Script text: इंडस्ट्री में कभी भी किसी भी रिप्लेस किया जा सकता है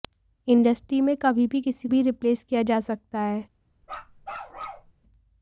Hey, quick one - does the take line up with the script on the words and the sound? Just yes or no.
no